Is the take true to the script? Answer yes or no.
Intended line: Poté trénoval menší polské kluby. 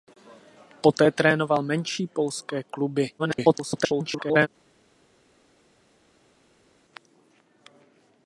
no